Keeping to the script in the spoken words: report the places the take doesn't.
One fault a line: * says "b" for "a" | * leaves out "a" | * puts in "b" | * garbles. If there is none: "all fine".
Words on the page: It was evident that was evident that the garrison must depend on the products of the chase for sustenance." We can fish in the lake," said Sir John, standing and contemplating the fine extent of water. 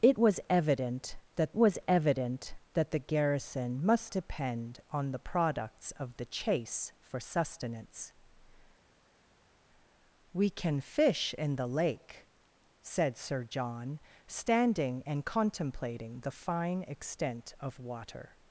all fine